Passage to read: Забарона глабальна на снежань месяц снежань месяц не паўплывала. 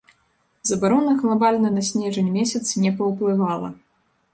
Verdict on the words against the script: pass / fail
fail